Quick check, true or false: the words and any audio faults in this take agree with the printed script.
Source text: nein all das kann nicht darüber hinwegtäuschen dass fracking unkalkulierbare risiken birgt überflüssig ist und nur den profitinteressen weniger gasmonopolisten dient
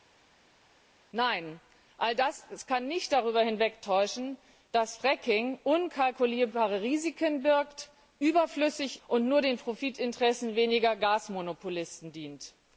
false